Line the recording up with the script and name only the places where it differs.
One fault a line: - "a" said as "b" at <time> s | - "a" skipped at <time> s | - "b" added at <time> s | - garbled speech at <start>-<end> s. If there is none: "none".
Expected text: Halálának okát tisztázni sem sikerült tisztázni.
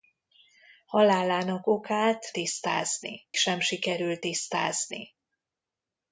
none